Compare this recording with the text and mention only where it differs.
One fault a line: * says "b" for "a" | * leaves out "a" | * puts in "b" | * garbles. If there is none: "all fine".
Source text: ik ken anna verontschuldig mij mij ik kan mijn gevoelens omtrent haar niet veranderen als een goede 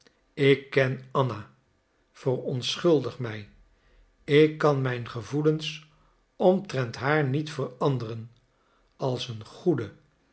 * leaves out "mij"